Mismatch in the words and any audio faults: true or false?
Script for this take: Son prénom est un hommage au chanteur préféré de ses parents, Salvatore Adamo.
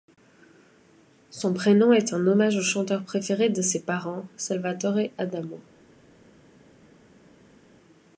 false